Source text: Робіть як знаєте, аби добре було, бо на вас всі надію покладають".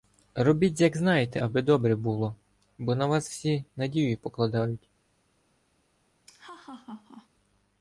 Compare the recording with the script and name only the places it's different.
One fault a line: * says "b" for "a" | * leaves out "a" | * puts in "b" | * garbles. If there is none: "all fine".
all fine